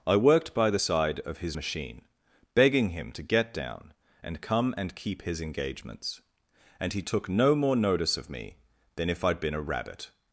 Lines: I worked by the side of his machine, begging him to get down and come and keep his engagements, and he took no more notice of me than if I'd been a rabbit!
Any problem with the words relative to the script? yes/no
no